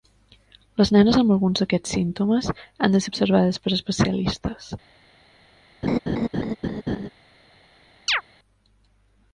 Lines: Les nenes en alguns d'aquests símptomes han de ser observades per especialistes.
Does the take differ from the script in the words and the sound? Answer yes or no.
yes